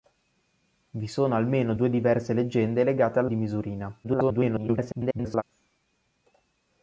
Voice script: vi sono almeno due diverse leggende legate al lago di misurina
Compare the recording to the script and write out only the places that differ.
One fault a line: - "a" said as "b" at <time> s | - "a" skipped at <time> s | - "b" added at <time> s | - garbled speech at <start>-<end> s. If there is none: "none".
- "lago" skipped at 3.3 s
- garbled speech at 4.0-5.4 s